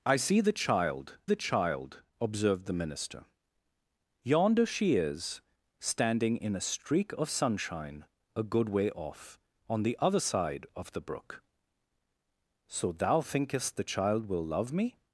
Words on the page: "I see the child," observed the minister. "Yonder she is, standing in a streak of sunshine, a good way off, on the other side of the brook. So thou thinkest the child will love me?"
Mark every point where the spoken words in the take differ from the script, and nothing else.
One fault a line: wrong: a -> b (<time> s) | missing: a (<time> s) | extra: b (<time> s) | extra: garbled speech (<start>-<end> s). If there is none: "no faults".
extra: the child (1.2 s)